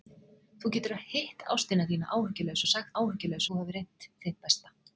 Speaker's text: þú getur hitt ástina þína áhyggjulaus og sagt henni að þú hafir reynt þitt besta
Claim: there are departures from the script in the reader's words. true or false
true